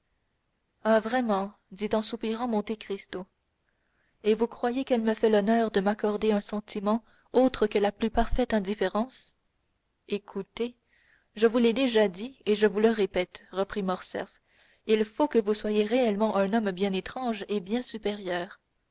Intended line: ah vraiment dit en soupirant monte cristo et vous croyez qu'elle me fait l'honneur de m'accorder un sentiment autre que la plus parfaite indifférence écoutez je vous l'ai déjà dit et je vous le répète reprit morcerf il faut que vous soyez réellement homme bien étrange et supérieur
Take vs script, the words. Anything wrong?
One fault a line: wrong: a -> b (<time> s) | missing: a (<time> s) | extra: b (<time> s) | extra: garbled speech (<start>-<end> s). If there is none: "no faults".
extra: un (16.4 s)
extra: bien (17.6 s)